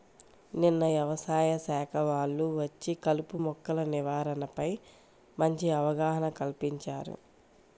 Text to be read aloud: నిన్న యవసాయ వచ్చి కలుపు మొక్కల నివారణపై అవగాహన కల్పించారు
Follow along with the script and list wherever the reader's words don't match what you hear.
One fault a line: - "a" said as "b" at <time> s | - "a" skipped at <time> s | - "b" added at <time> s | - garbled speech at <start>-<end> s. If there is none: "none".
- "శాఖ వాళ్ళు" added at 1.6 s
- "మంచి" added at 5.4 s